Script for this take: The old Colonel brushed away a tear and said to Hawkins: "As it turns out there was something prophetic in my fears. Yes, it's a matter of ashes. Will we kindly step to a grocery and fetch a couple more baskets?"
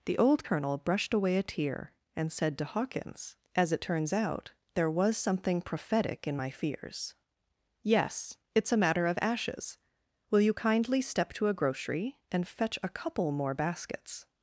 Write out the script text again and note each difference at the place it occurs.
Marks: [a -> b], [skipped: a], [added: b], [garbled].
The old Colonel brushed away a tear and said to Hawkins: "As it turns out there was something prophetic in my fears. Yes, it's a matter of ashes. Will [we -> you] kindly step to a grocery and fetch a couple more baskets?"